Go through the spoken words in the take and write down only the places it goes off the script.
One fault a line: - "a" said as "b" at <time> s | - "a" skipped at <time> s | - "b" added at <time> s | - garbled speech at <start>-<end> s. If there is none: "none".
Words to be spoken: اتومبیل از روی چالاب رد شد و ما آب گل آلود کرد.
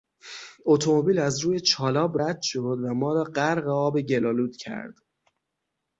- "را غرق" added at 3.1 s